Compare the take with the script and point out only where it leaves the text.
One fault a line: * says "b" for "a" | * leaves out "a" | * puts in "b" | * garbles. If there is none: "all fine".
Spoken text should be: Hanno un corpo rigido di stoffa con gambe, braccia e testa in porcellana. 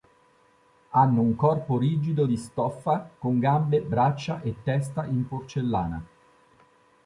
all fine